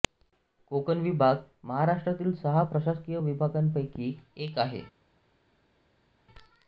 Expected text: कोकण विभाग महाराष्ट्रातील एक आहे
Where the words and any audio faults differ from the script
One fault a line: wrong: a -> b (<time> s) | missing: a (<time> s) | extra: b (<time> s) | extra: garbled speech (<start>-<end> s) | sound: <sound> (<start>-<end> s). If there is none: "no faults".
extra: सहा प्रशासकीय विभागांपैकी (2.4 s)